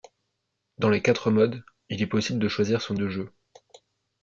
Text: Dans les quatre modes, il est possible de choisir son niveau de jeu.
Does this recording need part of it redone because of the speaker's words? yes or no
yes